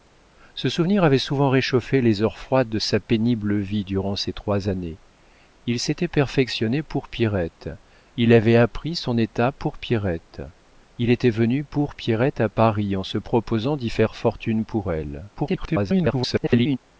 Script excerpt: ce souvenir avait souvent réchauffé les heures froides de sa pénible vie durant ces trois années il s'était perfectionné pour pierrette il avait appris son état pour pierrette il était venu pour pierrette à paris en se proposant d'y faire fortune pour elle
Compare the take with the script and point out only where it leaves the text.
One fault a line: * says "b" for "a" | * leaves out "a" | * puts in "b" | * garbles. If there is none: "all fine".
* garbles